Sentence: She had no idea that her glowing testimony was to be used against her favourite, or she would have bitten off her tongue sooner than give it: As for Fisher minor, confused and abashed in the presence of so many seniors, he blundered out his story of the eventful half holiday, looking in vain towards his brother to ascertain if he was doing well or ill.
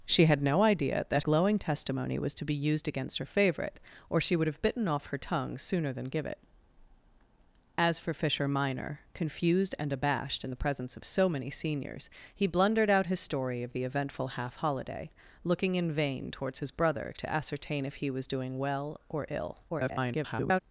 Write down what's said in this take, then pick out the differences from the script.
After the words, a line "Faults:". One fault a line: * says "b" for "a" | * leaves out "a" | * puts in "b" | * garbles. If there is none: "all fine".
She had no idea that glowing testimony was to be used against her favourite, or she would have bitten off her tongue sooner than give it: As for Fisher minor, confused and abashed in the presence of so many seniors, he blundered out his story of the eventful half holiday, looking in vain towards his brother to ascertain if he was doing well or ill. [garbled]
Faults:
* leaves out "her"
* garbles